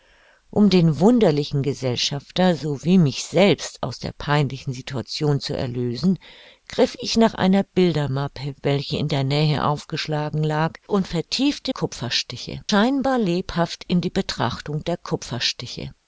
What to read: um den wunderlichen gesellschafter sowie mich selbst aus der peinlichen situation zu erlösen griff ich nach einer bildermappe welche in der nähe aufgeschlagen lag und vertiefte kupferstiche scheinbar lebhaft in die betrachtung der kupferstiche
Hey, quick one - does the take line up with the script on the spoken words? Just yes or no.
yes